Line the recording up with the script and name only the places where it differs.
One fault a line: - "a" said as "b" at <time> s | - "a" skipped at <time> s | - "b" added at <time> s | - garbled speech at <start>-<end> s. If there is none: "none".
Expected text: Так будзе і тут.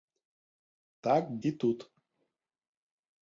- "будзе" skipped at 1.2 s